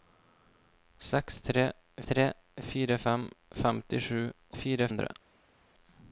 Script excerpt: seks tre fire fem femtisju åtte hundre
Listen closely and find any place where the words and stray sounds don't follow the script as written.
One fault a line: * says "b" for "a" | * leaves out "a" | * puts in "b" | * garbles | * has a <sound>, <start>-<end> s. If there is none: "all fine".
* puts in "tre"
* says "fire" for "åtte"